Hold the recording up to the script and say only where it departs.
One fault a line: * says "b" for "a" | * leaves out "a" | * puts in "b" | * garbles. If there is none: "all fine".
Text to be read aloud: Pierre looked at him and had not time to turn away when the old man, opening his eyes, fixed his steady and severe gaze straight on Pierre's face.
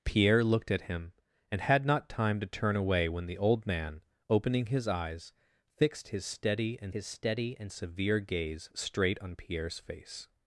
* puts in "his steady and"